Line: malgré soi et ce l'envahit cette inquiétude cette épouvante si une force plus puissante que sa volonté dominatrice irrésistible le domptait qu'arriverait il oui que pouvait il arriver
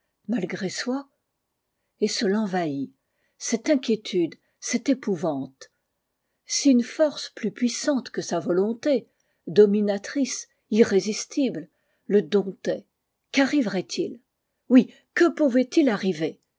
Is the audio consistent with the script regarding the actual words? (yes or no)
yes